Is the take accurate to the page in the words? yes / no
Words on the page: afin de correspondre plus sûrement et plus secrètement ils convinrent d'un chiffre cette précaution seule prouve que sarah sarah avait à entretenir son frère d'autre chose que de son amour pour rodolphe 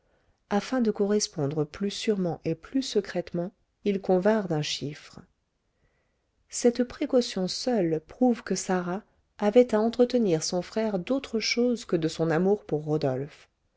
no